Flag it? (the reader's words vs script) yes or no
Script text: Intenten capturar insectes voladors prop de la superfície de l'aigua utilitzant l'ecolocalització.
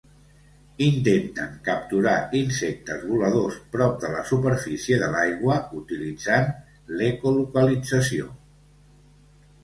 no